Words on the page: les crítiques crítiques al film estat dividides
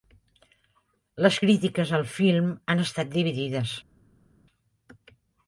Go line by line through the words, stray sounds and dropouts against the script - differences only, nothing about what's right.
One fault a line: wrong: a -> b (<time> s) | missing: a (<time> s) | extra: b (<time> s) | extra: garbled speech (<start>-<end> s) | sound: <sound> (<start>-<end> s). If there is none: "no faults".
missing: crítiques (1.9 s)
extra: han (2.7 s)